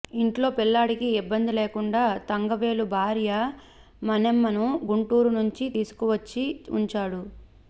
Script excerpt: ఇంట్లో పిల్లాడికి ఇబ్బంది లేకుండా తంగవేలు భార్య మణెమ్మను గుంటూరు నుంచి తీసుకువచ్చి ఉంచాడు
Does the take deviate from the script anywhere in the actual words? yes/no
no